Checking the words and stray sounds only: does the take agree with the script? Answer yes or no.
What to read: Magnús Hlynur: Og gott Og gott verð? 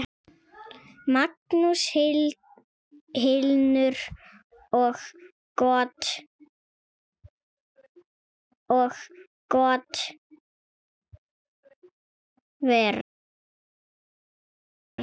yes